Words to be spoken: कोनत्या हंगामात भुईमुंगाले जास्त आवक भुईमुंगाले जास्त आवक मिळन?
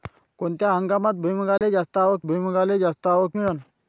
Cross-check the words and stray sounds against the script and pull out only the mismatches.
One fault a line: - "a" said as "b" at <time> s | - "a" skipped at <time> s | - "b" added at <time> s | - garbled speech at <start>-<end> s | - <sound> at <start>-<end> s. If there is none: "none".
- dropout at 1.6-1.6 s